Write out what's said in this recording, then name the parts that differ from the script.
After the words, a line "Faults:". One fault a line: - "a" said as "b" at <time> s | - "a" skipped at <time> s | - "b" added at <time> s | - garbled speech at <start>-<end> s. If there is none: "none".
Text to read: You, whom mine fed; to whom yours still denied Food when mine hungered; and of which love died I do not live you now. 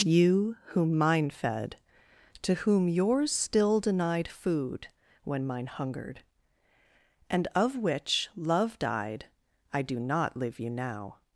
You, whom mine fed; to whom yours still denied Food when mine hungered; and of which love died I do not live you now.
Faults:
none